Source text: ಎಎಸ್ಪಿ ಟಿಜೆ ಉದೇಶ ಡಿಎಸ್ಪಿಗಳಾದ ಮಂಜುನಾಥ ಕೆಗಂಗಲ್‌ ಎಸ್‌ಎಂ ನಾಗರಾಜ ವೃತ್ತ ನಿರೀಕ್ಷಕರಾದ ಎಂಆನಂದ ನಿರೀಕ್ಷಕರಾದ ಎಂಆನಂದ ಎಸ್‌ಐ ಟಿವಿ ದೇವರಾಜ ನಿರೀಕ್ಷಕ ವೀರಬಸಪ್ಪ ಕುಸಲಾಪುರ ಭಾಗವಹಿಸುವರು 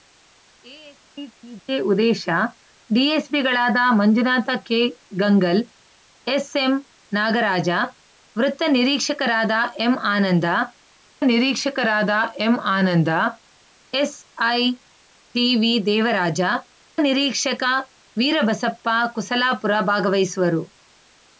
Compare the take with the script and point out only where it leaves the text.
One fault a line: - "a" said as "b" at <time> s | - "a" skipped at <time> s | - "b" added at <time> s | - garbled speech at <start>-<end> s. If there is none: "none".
none